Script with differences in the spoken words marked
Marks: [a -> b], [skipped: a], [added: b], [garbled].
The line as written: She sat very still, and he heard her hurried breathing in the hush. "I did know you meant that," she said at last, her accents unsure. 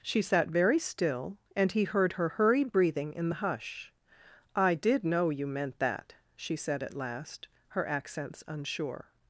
She sat very still, and he heard her hurried breathing in the hush. "I did know you meant that," she said at last, her accents unsure.